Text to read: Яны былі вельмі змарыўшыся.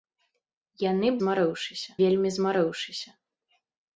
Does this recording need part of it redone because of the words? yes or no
yes